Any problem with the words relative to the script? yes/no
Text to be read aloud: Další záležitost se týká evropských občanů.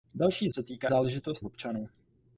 yes